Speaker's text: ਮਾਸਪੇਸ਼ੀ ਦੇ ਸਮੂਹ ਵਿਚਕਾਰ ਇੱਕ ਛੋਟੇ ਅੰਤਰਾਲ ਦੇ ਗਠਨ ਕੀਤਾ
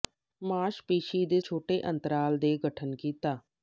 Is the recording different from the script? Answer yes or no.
yes